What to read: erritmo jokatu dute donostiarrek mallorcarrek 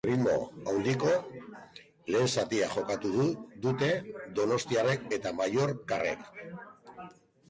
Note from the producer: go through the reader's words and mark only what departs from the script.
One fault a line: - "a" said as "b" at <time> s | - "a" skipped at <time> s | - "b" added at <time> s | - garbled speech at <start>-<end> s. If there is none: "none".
- "handiko lehen zatia" added at 0.7 s
- "eta" added at 5.2 s